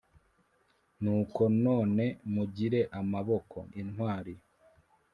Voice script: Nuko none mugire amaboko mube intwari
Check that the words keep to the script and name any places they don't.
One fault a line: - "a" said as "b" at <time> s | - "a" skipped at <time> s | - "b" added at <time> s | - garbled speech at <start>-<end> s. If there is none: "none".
- "mube" skipped at 3.6 s